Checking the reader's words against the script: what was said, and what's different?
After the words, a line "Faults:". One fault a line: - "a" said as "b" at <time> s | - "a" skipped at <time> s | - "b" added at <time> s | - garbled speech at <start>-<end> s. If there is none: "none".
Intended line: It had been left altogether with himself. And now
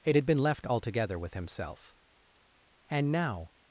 It had been left altogether with himself. And now
Faults:
none